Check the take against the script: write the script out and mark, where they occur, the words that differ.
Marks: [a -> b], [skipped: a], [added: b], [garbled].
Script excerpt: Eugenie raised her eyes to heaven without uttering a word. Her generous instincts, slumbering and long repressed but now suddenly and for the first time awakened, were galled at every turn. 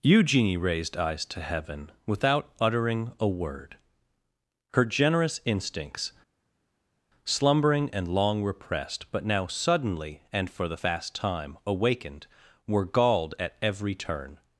Eugenie raised [skipped: her] eyes to heaven without uttering a word. Her generous instincts, slumbering and long repressed but now suddenly and for the [first -> fast] time awakened, were galled at every turn.